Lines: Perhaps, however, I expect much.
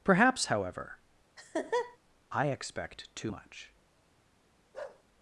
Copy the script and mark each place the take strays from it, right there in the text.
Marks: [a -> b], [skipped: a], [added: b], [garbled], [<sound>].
Perhaps, however, [laugh] I expect [added: too] much. [bark]